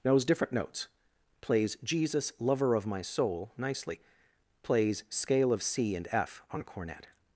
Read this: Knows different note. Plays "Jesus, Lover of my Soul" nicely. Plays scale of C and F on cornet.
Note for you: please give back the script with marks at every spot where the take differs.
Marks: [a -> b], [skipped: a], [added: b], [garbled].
Knows different [note. -> notes] Plays "Jesus, Lover of my Soul" nicely. Plays scale of C and F on cornet.